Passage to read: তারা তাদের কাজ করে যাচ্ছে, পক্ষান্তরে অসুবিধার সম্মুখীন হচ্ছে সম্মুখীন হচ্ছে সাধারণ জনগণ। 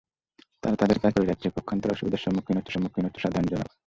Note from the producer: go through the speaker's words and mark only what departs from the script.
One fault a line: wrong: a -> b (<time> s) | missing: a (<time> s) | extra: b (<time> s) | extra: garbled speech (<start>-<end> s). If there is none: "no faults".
no faults